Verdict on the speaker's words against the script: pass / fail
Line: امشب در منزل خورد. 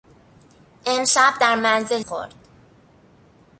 pass